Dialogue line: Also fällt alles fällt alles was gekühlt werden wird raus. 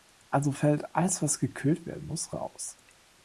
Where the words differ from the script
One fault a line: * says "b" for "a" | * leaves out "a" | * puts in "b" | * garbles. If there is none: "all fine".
* leaves out "fällt alles"
* says "muss" for "wird"